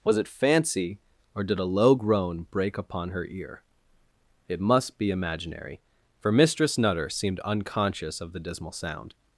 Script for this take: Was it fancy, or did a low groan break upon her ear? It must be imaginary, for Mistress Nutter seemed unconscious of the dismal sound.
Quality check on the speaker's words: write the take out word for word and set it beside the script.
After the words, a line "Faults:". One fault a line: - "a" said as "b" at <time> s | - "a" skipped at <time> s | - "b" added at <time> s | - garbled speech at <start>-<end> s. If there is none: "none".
Was it fancy, or did a low groan break upon her ear? It must be imaginary, for Mistress Nutter seemed unconscious of the dismal sound.
Faults:
none